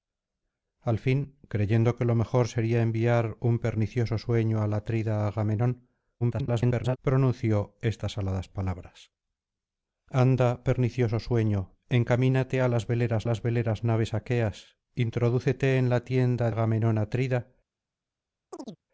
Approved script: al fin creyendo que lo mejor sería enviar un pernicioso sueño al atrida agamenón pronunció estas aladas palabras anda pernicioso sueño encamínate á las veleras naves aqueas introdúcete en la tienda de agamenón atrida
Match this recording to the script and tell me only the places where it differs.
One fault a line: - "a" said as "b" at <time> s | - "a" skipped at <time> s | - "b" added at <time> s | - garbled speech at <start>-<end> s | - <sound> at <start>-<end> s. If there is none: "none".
- garbled speech at 6.2-7.0 s
- "las veleras" added at 13.2 s
- "de" skipped at 16.5 s
- chirp at 18.5-18.8 s